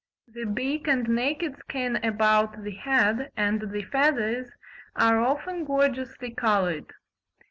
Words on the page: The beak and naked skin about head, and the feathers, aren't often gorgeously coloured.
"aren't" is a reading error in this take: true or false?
true